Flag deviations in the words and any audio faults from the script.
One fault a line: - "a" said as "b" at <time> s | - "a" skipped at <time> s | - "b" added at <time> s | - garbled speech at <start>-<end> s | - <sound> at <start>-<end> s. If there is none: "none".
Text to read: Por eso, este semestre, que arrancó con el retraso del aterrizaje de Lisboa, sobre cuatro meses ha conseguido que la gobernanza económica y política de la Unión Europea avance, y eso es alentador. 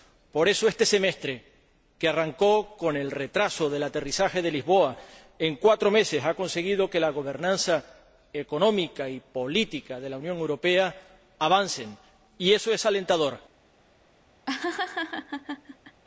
- "sobre" said as "en" at 5.4 s
- laugh at 14.5-16.0 s